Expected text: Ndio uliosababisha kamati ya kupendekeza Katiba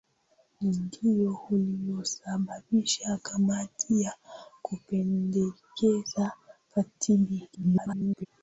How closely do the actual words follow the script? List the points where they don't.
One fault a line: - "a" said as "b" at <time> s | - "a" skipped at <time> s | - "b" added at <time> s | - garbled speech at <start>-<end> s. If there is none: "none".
- garbled speech at 7.5-8.3 s